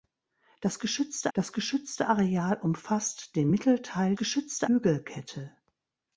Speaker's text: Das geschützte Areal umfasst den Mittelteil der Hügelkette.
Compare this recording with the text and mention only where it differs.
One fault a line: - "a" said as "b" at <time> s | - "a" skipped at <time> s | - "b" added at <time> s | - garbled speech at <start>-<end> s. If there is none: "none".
- "das geschützte" added at 1.3 s
- "der" said as "geschützte" at 4.2 s